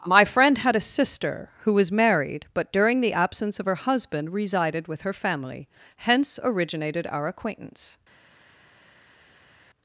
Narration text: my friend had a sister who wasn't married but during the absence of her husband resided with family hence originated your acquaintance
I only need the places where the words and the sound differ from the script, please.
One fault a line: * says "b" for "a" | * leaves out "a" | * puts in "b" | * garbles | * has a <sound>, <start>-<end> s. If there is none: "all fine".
* says "was" for "wasn't"
* puts in "her"
* says "our" for "your"